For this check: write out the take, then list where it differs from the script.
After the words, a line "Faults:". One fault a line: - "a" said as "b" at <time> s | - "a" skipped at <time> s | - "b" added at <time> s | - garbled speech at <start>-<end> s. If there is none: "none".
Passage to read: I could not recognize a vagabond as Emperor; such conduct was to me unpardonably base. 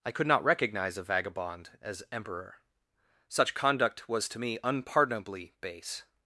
I could not recognize a vagabond as Emperor; such conduct was to me unpardonably base.
Faults:
none